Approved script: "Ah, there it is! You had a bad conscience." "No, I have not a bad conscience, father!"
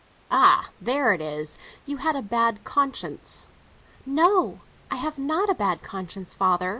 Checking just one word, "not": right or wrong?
right